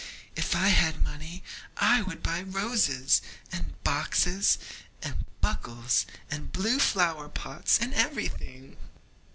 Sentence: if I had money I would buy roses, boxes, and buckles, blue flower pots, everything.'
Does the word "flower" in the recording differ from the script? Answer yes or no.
no